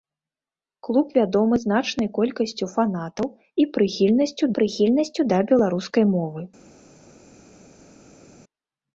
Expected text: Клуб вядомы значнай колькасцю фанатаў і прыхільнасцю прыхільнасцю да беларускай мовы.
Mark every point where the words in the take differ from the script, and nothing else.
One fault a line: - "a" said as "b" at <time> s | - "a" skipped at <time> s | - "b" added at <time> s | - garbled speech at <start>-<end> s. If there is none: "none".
none